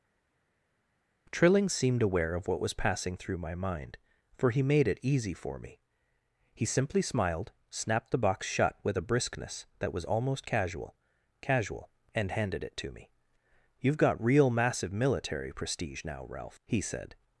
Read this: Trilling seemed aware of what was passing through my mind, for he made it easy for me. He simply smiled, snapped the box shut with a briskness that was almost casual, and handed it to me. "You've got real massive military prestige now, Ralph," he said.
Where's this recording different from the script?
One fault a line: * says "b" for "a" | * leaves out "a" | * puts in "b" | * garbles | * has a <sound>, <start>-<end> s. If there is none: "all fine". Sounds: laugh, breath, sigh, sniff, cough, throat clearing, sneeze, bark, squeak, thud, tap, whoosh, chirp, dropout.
* puts in "casual"